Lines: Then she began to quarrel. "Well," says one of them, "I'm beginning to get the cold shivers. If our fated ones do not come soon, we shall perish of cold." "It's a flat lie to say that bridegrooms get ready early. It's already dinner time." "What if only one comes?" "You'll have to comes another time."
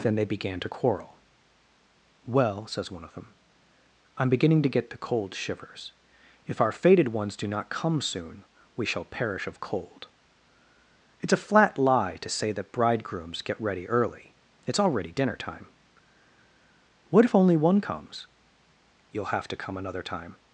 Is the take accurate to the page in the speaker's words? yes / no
no